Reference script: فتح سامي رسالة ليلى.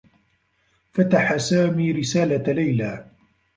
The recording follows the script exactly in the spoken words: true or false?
true